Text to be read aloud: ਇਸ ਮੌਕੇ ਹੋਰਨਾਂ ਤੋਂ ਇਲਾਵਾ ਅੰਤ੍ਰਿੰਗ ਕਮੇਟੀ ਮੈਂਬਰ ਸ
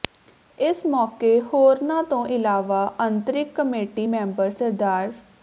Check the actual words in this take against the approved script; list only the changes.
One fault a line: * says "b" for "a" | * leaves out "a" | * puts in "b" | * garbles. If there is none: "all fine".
all fine